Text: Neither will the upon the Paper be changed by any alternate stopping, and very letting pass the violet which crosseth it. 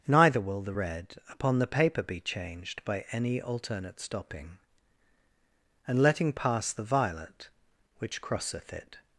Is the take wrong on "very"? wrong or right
wrong